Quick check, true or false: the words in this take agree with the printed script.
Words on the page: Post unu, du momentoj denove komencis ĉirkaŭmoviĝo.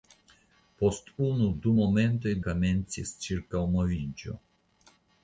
false